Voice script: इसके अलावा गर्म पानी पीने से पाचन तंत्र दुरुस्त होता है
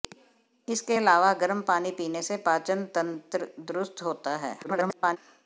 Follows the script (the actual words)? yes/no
no